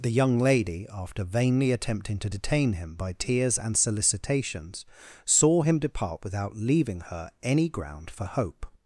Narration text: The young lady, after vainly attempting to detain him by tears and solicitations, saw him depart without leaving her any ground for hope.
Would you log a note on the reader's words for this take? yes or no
no